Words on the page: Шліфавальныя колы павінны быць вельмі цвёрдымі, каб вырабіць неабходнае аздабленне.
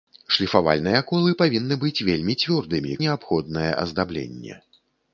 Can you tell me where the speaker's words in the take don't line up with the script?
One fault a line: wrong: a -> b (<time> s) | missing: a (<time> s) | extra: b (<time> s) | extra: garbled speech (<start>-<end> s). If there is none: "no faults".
missing: каб вырабіць (3.0 s)